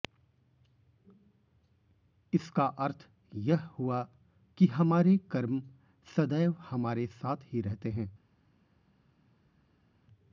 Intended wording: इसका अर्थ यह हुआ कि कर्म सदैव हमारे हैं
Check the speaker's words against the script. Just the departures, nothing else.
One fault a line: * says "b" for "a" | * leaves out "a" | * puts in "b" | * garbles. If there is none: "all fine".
* puts in "हमारे"
* puts in "साथ ही रहते"